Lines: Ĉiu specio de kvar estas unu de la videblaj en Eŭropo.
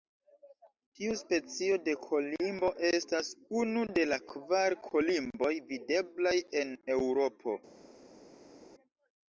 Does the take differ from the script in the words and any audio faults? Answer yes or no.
yes